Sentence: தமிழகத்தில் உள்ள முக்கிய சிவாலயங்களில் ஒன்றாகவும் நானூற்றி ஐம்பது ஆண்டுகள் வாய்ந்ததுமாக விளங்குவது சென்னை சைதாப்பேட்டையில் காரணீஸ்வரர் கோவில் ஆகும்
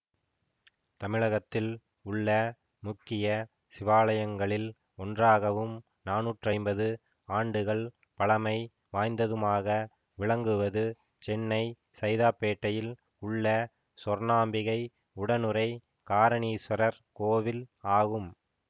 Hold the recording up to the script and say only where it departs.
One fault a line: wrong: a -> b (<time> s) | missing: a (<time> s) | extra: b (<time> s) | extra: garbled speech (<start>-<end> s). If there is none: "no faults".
extra: பழமை (8.2 s)
extra: உள்ள சொர்ணாம்பிகை உடனுறை (13.2 s)